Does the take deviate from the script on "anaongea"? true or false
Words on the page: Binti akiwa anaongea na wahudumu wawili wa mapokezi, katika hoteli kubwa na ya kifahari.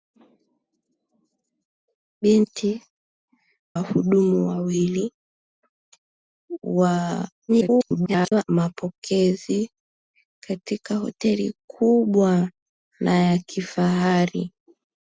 true